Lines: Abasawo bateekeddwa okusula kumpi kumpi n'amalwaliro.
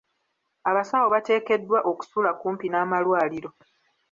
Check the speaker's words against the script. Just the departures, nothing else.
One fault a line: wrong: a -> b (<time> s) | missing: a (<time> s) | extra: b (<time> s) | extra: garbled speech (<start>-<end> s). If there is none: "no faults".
missing: kumpi (2.7 s)